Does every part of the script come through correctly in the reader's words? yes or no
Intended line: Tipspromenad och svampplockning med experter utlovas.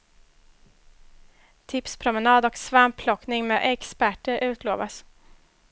yes